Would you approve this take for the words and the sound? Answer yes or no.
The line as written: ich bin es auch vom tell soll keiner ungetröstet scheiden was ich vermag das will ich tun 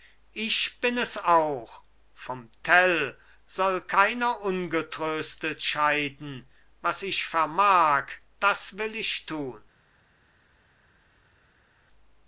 yes